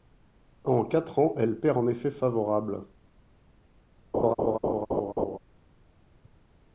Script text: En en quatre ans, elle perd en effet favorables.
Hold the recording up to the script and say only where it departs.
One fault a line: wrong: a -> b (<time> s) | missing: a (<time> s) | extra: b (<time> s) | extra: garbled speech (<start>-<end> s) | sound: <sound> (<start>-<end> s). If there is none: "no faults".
missing: en (0.8 s)
sound: laugh (4.1-5.4 s)